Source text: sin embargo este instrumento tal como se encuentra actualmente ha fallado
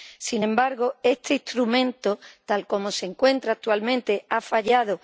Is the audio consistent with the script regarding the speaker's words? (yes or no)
yes